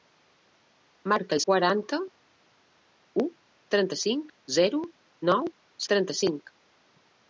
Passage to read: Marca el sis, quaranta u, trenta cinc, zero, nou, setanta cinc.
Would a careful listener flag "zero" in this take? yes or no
no